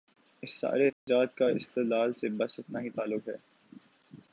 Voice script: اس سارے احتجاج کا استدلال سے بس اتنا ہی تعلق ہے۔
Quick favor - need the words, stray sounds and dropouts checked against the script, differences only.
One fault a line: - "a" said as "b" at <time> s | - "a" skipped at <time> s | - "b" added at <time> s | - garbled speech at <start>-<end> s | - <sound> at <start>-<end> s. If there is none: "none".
- dropout at 0.9-1.1 s